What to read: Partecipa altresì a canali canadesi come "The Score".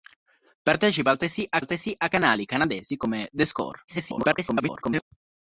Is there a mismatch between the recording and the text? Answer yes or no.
yes